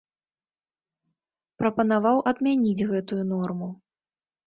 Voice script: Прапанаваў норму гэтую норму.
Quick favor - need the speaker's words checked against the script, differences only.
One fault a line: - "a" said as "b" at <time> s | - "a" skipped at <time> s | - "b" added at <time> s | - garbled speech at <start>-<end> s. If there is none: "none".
- "норму" said as "адмяніць" at 2.3 s